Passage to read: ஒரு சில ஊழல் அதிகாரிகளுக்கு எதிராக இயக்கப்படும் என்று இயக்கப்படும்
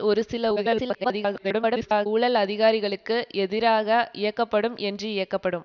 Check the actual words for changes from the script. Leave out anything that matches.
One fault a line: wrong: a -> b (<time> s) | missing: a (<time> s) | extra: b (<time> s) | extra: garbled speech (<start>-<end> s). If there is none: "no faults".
extra: garbled speech (0.6-2.1 s)